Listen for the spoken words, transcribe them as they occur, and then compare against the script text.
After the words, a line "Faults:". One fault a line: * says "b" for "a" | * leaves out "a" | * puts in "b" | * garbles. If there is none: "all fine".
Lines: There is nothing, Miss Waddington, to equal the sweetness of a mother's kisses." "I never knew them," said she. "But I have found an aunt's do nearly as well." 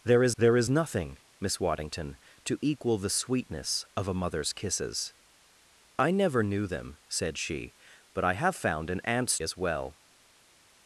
There is there is nothing, Miss Waddington, to equal the sweetness of a mother's kisses." "I never knew them," said she. "But I have found an aunt's as well."
Faults:
* puts in "there is"
* leaves out "do nearly"